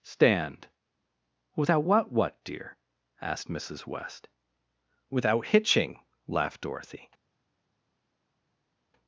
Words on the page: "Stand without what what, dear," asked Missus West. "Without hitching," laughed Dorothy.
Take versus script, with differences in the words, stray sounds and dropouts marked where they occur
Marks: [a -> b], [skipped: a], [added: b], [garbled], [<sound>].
"Stand without what what, dear," asked Missus West. "Without hitching," laughed Dorothy.